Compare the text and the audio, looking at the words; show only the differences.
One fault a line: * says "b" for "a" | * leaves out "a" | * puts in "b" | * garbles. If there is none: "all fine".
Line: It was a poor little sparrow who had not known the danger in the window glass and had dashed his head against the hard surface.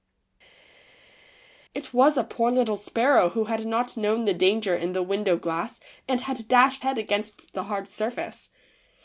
* leaves out "his"